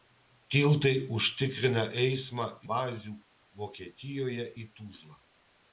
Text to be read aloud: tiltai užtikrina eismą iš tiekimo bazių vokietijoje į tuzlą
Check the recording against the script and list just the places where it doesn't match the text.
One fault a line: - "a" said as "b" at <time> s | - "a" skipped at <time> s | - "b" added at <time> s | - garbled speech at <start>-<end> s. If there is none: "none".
- "iš tiekimo" skipped at 2.5 s